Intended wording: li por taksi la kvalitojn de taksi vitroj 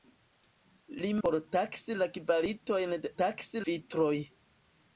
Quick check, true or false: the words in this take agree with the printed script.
true